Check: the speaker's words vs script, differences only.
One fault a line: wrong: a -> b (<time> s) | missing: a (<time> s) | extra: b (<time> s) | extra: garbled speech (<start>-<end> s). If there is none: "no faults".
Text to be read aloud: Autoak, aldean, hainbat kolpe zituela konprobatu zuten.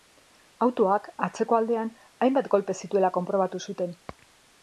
extra: atzeko (1.3 s)